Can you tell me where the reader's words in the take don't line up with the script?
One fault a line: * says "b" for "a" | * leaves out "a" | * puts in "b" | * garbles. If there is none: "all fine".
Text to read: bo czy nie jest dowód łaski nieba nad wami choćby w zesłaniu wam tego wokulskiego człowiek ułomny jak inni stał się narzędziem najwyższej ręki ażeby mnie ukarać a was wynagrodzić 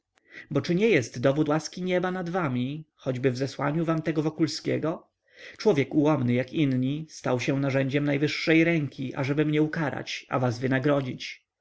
all fine